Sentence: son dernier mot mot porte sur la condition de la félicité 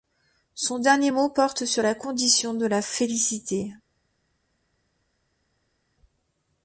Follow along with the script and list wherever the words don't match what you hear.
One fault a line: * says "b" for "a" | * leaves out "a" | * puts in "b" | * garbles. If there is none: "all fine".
* leaves out "mot"